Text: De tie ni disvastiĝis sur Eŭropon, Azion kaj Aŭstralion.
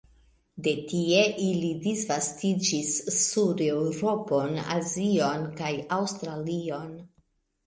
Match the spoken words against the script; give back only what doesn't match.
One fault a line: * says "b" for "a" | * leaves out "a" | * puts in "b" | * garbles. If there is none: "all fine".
* says "ili" for "ni"